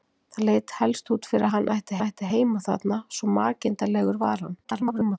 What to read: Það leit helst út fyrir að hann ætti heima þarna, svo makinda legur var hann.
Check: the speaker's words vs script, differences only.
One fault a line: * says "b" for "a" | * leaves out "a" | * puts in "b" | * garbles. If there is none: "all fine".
* puts in "ætti"
* garbles